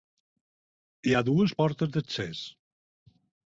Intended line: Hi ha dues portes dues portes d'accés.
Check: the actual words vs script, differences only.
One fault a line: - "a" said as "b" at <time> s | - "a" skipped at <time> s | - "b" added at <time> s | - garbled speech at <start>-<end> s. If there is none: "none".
- "dues portes" skipped at 1.9 s